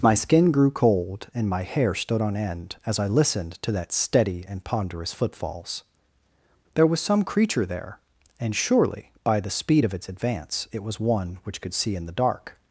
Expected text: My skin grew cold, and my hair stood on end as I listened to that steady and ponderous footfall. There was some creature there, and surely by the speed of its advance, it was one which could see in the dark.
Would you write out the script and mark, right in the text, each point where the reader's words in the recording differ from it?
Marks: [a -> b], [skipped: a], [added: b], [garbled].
My skin grew cold, and my hair stood on end as I listened to that steady and ponderous [footfall. -> footfalls] There was some creature there, and surely by the speed of its advance, it was one which could see in the dark.